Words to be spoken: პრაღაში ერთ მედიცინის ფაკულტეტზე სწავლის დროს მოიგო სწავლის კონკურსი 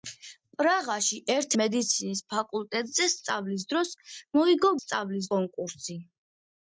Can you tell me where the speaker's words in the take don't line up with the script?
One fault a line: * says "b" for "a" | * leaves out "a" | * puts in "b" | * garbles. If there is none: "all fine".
all fine